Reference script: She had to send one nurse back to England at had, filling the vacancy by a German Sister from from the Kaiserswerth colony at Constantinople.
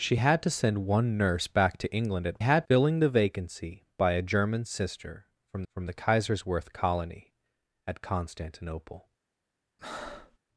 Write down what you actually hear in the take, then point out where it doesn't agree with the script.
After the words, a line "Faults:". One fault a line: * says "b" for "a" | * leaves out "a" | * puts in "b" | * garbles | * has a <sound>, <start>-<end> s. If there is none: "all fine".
She had to send one nurse back to England at had, filling the vacancy by a German Sister from from the Kaiserswerth colony at Constantinople.
Faults:
* has a breath, 9.8-10.4 s